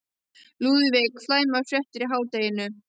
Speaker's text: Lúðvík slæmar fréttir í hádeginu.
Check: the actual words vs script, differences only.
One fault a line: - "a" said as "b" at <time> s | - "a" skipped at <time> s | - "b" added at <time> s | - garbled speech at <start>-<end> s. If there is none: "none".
none